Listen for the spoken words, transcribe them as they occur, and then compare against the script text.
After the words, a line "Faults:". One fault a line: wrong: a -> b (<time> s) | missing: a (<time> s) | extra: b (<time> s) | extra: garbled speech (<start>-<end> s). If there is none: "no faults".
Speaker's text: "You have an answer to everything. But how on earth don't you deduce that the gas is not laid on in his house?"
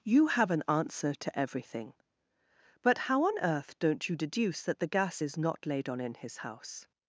"You have an answer to everything. But how on earth don't you deduce that the gas is not laid on in his house?"
Faults:
no faults